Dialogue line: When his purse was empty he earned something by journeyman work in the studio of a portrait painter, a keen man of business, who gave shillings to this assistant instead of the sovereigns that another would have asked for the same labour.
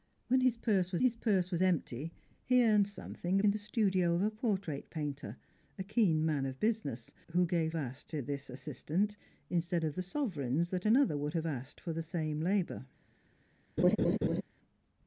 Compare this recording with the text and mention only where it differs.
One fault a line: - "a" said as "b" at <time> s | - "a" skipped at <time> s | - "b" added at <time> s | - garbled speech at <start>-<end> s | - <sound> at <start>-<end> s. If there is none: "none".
- "his purse was" added at 1.0 s
- "by journeyman work" skipped at 3.4 s
- "shillings" said as "asked" at 7.8 s
- laugh at 13.8-14.4 s